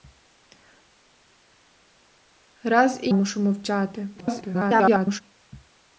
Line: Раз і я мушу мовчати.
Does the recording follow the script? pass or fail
fail